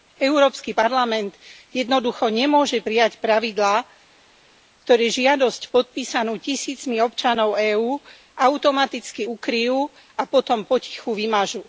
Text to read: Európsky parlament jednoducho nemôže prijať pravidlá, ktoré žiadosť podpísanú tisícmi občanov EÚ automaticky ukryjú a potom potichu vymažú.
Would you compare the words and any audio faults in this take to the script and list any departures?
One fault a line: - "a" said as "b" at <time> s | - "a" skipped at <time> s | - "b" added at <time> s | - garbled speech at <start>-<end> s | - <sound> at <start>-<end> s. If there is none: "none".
none